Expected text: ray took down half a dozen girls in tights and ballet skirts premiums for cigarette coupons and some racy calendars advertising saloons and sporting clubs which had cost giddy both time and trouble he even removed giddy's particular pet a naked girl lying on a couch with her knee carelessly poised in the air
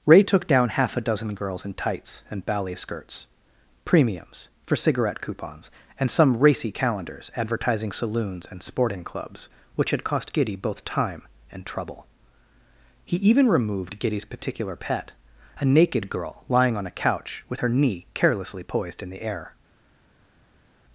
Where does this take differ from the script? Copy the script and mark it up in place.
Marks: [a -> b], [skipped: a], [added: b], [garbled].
ray took down half a dozen girls in tights and ballet skirts premiums for cigarette coupons and some racy calendars advertising saloons and sporting clubs which had cost giddy both time and trouble he even removed giddy's particular pet a naked girl lying on a couch with her knee carelessly poised in the air